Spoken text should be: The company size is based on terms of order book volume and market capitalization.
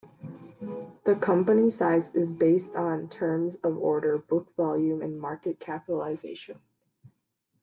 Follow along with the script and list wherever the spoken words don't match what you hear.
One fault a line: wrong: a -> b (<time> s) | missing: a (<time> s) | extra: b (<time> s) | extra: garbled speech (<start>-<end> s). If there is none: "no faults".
no faults